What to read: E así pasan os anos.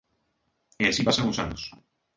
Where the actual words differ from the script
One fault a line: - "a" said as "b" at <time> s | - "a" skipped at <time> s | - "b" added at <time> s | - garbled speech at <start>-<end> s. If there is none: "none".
none